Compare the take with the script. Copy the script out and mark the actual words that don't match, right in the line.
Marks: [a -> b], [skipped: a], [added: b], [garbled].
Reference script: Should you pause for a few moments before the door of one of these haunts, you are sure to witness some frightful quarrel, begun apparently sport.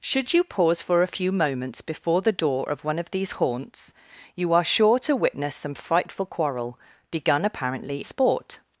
Should you pause for a few moments before the door of one of these haunts, you are sure to witness some frightful quarrel, begun apparently sport.